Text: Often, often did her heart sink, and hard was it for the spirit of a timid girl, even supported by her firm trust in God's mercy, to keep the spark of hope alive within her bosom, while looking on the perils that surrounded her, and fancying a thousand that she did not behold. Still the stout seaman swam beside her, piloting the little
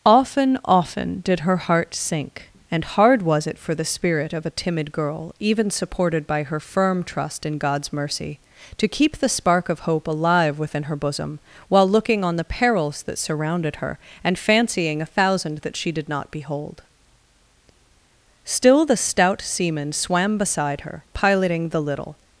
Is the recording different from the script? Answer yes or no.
no